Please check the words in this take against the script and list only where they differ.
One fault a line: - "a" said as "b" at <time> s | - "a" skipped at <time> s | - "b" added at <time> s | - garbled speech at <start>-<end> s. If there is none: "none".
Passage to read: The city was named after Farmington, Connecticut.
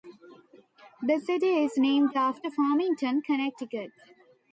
- "was" said as "is" at 1.6 s